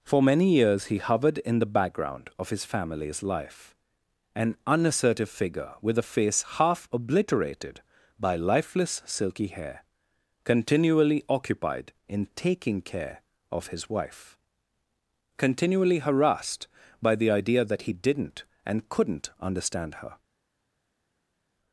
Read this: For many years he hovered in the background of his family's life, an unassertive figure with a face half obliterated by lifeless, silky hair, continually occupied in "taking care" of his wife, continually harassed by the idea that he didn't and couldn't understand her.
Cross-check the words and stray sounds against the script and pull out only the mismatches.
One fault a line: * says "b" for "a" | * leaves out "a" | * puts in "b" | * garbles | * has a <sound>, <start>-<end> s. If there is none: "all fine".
all fine